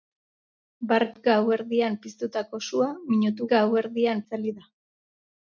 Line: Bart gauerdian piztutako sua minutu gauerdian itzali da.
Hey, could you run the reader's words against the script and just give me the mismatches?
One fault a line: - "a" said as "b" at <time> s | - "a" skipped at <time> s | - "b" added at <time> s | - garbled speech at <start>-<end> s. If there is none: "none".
none